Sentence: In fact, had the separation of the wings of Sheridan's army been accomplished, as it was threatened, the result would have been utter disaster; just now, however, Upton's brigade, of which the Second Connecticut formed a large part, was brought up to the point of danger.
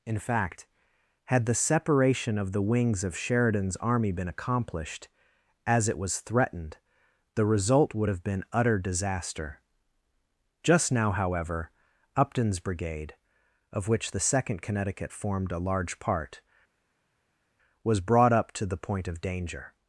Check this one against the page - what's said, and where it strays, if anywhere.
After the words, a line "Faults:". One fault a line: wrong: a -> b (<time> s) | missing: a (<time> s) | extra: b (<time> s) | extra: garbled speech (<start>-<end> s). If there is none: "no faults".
In fact, had the separation of the wings of Sheridan's army been accomplished, as it was threatened, the result would have been utter disaster; just now, however, Upton's brigade, of which the Second Connecticut formed a large part, was brought up to the point of danger.
Faults:
no faults